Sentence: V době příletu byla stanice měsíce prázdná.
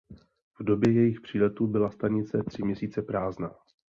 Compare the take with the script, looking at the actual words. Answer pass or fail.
fail